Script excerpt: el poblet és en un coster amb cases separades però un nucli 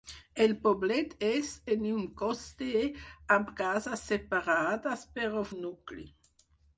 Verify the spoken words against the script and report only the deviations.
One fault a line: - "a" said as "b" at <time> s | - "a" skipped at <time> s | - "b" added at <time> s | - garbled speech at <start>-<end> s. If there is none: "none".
none